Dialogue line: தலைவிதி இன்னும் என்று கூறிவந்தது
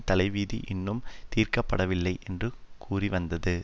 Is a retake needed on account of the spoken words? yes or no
yes